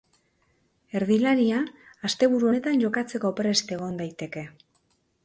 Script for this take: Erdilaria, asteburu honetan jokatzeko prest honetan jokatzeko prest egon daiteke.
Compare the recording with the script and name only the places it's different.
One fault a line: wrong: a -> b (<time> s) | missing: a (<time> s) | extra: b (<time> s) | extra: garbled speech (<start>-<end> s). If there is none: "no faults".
missing: honetan jokatzeko prest (3.7 s)